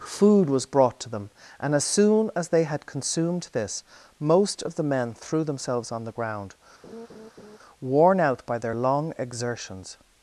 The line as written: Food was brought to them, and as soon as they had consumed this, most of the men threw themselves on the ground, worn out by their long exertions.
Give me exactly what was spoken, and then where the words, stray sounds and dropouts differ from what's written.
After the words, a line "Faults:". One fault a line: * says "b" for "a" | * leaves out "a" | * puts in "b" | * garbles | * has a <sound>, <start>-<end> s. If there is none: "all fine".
Food was brought to them, and as soon as they had consumed this, most of the men threw themselves on the ground, worn out by their long exertions.
Faults:
* has a laugh, 6.8-7.6 s